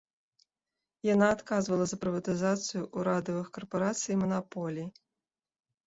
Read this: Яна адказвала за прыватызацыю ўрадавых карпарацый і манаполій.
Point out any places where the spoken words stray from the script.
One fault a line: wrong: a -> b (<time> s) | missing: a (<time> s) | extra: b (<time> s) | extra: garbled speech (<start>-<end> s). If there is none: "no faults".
no faults